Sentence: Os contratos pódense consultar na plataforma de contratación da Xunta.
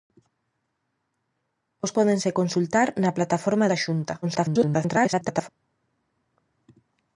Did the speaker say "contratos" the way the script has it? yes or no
no